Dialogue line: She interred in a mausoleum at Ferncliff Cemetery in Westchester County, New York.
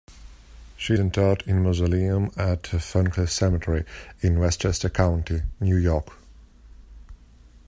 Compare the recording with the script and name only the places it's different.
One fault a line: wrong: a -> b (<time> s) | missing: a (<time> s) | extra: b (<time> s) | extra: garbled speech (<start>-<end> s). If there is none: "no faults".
no faults